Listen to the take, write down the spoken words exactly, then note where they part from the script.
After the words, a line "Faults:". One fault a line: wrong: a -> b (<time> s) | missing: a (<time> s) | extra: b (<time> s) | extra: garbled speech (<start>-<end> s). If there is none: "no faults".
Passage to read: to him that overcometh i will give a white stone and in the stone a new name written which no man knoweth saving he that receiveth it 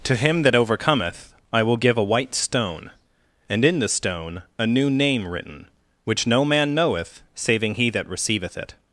to him that overcometh i will give a white stone and in the stone a new name written which no man knoweth saving he that receiveth it
Faults:
no faults